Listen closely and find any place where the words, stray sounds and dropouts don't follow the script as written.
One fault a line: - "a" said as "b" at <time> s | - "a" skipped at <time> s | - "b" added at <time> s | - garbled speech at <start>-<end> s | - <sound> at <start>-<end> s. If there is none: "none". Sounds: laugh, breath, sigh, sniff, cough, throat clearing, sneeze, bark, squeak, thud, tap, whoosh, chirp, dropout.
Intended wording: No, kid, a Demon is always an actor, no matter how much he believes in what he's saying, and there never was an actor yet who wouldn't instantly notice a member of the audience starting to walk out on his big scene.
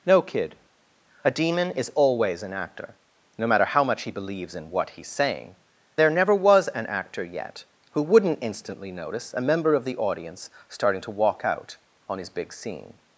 - "and" skipped at 5.6 s